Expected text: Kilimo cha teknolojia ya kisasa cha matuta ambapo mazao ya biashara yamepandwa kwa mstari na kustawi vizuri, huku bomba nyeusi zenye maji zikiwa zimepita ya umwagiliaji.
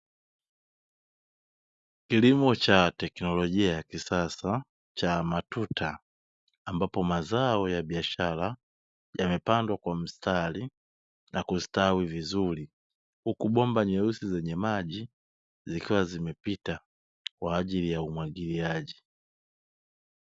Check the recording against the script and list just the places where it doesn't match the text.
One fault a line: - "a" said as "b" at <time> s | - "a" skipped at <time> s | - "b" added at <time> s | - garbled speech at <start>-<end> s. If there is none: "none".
- "kwa ajili" added at 17.4 s